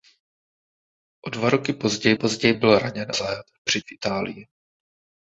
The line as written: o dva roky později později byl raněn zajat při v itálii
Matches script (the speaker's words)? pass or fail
pass